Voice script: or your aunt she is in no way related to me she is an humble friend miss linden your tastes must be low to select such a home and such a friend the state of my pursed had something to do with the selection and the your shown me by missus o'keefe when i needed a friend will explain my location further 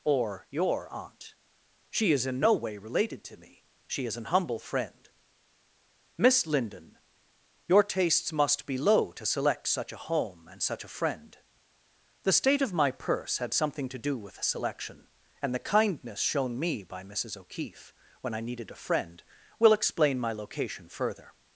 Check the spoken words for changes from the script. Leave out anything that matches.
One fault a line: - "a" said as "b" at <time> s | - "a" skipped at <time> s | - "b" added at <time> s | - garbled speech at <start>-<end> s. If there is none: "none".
- "pursed" said as "purse" at 12.9 s
- "your" said as "kindness" at 15.7 s